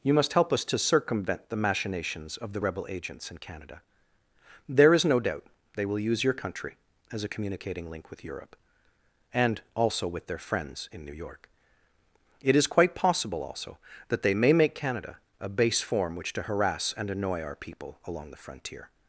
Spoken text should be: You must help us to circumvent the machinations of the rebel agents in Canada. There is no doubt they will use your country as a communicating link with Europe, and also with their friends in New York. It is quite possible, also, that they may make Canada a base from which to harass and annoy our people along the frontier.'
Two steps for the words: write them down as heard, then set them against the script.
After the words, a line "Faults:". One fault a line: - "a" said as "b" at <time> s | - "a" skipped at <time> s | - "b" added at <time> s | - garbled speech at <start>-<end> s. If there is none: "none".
You must help us to circumvent the machinations of the rebel agents in Canada. There is no doubt they will use your country as a communicating link with Europe, and also with their friends in New York. It is quite possible, also, that they may make Canada a base form which to harass and annoy our people along the frontier.'
Faults:
- "from" said as "form" at 15.8 s